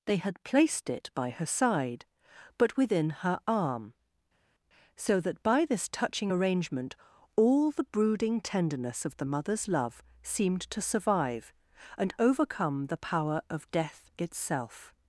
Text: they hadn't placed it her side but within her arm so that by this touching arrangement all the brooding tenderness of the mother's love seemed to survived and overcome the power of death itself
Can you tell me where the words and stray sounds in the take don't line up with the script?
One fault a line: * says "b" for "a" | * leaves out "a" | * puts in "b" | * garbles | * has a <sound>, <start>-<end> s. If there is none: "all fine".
* says "had" for "hadn't"
* puts in "by"
* says "survive" for "survived"